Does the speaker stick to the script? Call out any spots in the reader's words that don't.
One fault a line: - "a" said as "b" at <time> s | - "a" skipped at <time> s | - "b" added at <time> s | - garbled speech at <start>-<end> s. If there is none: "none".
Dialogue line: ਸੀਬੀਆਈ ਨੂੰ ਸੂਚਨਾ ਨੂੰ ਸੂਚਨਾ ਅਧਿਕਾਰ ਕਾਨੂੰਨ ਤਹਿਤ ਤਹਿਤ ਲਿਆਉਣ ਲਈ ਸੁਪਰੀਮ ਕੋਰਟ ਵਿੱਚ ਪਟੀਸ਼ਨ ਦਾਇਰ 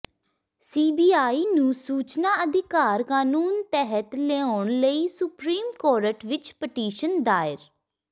- "ਨੂੰ ਸੂਚਨਾ" skipped at 2.3 s
- "ਤਹਿਤ" skipped at 4.1 s